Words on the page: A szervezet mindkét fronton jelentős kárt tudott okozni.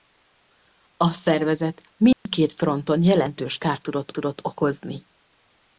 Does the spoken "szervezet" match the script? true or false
true